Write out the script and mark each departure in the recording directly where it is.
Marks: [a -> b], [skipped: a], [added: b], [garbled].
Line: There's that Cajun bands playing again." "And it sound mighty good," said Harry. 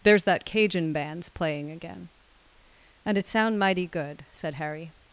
There's that Cajun bands playing again." "And it sound mighty good," said Harry.